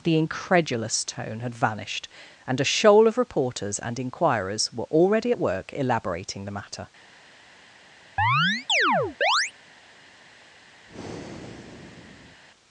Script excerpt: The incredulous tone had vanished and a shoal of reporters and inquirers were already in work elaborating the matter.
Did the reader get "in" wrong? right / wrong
wrong